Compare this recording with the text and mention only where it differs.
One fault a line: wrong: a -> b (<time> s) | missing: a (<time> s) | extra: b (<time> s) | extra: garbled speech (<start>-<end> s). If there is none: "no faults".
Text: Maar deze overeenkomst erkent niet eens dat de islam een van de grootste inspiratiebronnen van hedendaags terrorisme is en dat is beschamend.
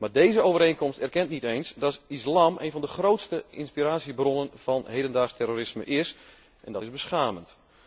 no faults